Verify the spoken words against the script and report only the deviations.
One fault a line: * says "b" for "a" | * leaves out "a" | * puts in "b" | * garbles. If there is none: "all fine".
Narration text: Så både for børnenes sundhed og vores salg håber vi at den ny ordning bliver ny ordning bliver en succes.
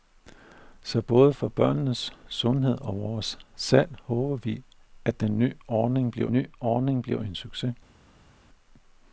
all fine